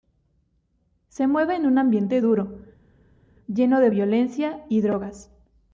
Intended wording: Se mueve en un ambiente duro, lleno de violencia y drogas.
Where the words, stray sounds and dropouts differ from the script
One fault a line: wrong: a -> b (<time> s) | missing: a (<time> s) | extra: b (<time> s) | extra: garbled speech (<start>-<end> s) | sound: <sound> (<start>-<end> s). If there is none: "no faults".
no faults